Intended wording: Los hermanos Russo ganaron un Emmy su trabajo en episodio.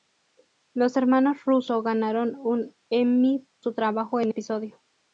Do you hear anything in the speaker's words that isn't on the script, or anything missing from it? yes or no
no